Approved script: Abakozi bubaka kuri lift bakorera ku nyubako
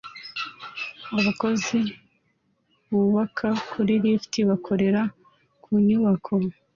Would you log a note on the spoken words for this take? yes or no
no